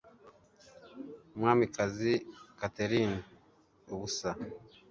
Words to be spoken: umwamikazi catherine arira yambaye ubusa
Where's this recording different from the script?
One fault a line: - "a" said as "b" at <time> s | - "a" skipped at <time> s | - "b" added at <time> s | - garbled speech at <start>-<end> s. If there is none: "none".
- "arira yambaye" skipped at 3.2 s